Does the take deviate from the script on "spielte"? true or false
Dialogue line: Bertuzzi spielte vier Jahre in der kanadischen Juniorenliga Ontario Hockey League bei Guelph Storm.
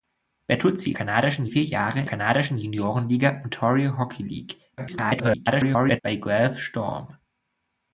true